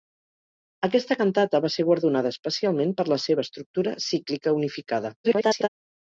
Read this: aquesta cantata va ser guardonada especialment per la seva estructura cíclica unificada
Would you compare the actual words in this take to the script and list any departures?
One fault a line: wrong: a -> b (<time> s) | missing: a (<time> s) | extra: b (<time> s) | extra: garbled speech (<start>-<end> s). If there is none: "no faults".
extra: garbled speech (5.2-5.7 s)